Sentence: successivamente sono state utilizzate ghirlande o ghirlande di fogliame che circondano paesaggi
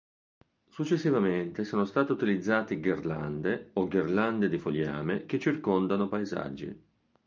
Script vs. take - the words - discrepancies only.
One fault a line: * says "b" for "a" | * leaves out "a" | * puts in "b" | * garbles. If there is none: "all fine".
all fine